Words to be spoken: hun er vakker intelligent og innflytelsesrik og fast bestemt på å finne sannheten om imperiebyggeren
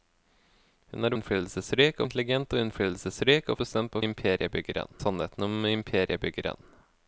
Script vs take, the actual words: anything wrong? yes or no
yes